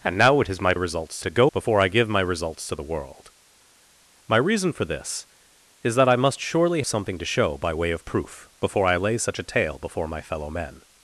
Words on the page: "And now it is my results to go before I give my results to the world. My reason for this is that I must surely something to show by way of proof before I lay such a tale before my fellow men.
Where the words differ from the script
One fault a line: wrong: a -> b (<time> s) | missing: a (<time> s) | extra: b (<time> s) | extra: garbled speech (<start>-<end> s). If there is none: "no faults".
no faults